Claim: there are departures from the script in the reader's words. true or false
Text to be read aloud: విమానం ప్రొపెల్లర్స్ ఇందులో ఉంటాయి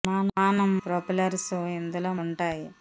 false